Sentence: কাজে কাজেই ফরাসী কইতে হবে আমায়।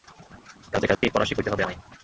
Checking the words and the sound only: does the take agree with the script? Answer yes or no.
no